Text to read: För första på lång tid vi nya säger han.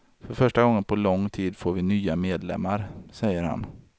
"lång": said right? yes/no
yes